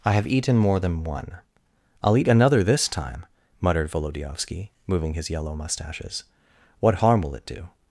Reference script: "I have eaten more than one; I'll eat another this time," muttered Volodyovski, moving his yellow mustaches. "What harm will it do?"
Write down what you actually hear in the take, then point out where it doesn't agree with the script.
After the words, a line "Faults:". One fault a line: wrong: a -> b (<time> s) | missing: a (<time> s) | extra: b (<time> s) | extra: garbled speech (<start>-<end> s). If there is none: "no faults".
"I have eaten more than one; I'll eat another this time," muttered Volodyovski, moving his yellow mustaches. "What harm will it do?"
Faults:
no faults